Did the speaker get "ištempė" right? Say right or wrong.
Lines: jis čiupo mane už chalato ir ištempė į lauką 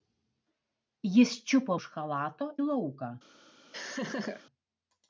wrong